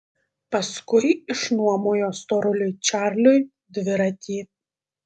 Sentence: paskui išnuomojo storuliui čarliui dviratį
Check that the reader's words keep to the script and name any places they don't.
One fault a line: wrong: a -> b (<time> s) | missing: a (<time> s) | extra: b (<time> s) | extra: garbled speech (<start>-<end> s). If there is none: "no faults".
no faults